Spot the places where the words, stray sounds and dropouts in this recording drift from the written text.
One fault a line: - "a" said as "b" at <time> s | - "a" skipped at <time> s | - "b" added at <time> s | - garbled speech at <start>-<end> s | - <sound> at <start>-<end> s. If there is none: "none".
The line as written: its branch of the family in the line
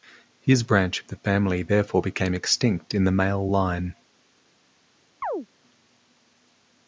- "its" said as "his" at 0.4 s
- "therefore became extinct" added at 1.6 s
- "male" added at 3.1 s
- chirp at 5.2-5.5 s